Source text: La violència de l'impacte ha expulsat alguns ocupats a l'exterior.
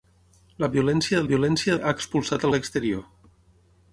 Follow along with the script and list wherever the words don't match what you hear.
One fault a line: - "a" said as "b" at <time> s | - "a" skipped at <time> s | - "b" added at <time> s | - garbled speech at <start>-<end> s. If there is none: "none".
- "l'impacte" said as "violència" at 1.3 s
- "alguns ocupats" skipped at 2.5 s